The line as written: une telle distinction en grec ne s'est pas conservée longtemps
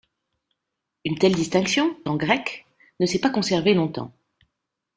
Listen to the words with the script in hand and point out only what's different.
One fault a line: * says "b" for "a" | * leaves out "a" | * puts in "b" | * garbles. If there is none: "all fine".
all fine